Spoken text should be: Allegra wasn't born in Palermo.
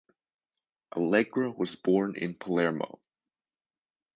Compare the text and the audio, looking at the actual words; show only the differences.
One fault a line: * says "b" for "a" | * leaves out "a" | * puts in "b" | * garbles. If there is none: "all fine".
* says "was" for "wasn't"